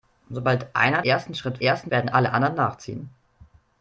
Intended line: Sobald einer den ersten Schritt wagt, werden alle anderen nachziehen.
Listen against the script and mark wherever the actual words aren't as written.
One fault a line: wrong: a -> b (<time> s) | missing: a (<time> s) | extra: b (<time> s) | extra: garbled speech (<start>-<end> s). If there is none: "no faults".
missing: den (1.0 s)
wrong: wagt -> ersten (1.6 s)